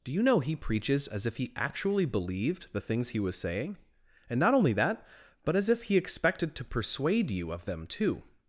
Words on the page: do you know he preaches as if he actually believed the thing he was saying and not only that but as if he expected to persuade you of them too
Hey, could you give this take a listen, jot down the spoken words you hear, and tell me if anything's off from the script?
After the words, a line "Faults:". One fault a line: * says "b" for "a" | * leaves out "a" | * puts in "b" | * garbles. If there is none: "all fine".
do you know he preaches as if he actually believed the things he was saying and not only that but as if he expected to persuade you of them too
Faults:
* says "things" for "thing"